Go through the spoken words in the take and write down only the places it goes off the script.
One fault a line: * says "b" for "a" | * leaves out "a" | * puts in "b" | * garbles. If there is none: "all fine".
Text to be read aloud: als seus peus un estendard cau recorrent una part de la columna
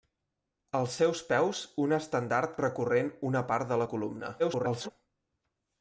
* leaves out "cau"
* garbles